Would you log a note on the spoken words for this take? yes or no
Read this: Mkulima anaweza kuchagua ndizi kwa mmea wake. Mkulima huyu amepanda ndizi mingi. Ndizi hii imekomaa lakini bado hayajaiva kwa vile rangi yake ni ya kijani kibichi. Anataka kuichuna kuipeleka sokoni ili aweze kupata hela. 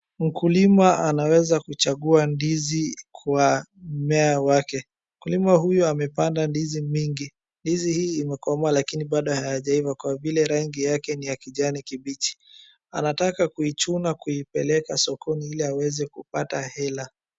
no